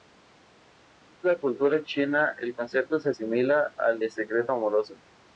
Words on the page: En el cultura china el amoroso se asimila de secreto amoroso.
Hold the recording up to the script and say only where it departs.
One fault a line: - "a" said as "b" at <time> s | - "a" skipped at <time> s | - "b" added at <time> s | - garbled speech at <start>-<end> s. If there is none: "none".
- "el" said as "la" at 1.2 s
- "amoroso" said as "concepto" at 2.5 s
- "al" added at 3.8 s